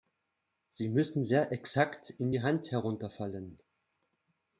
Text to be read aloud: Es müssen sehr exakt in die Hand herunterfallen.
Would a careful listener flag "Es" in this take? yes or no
yes